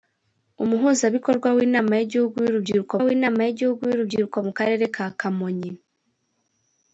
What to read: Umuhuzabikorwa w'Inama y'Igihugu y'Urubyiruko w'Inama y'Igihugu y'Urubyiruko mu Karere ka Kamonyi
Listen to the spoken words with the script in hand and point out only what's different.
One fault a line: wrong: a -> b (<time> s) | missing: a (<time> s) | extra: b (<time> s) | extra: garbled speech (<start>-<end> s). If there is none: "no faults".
no faults